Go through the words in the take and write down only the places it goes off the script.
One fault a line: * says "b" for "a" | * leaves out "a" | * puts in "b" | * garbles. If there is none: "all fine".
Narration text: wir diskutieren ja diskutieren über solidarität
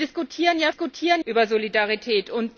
all fine